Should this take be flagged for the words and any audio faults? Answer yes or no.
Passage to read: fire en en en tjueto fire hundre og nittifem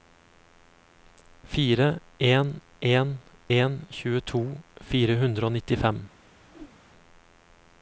yes